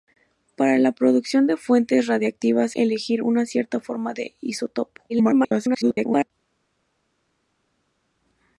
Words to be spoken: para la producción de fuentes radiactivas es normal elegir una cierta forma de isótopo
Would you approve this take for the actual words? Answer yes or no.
no